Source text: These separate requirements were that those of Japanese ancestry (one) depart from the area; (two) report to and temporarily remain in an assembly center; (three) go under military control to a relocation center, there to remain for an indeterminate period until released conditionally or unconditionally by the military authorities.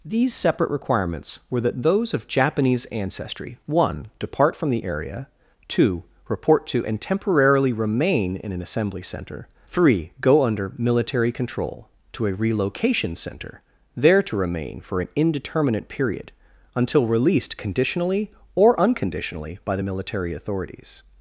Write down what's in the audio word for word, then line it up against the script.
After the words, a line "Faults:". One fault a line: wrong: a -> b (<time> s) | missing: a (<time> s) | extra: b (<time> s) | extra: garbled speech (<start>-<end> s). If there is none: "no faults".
These separate requirements were that those of Japanese ancestry (one) depart from the area; (two) report to and temporarily remain in an assembly center; (three) go under military control to a relocation center, there to remain for an indeterminate period until released conditionally or unconditionally by the military authorities.
Faults:
no faults